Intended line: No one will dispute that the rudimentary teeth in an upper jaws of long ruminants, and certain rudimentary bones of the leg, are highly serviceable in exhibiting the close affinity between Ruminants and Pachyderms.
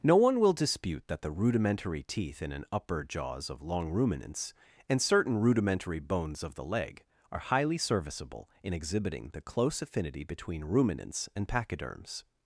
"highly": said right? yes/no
yes